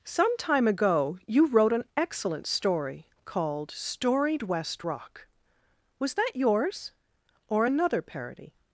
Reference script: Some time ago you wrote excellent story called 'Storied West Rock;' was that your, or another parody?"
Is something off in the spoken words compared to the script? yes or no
yes